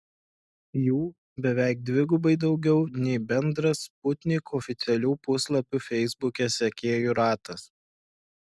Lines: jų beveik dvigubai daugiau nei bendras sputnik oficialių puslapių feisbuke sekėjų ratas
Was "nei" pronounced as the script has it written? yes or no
yes